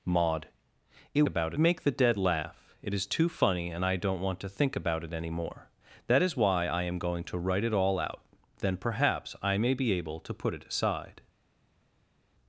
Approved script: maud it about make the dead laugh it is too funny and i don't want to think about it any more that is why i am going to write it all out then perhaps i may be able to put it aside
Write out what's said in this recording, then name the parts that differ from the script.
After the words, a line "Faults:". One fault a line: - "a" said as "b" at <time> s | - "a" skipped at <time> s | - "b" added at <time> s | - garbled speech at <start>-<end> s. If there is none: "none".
maud it about make the dead laugh it is too funny and i don't want to think about it any more that is why i am going to write it all out then perhaps i may be able to put it aside
Faults:
none